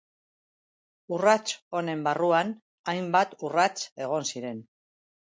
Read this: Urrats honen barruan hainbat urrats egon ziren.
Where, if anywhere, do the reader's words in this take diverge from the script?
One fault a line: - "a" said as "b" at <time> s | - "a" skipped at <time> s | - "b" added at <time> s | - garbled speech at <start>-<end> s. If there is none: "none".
none